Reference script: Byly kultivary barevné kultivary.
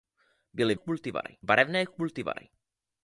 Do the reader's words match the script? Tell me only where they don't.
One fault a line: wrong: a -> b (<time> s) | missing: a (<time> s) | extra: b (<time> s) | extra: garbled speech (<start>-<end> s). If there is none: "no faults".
no faults